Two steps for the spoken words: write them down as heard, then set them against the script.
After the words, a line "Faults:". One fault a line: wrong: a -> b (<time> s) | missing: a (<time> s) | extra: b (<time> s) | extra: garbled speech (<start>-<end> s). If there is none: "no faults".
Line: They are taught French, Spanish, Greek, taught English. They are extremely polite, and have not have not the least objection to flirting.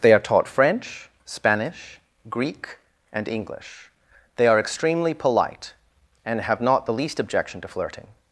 They are taught French, Spanish, Greek, and English. They are extremely polite, and have not the least objection to flirting.
Faults:
wrong: taught -> and (3.1 s)
missing: have not (6.9 s)